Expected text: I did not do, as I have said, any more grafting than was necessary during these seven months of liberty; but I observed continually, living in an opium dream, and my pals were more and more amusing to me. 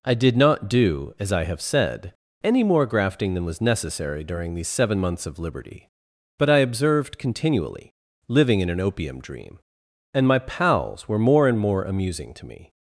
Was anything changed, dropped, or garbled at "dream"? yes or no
no